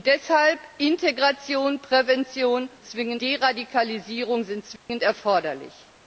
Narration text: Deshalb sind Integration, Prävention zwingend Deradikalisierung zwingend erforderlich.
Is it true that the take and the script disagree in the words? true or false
false